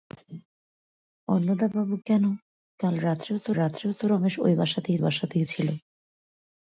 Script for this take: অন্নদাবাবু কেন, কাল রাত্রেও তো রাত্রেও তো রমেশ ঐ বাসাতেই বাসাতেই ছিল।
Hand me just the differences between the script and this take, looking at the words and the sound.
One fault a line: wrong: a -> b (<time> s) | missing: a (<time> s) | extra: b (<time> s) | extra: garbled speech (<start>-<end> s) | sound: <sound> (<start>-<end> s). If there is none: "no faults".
no faults